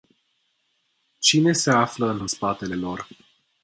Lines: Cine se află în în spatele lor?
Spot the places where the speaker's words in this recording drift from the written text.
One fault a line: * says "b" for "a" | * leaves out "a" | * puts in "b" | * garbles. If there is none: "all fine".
all fine